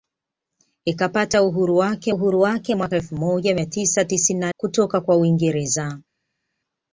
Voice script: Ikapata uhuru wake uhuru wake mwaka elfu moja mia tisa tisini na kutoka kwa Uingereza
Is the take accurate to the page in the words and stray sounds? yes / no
yes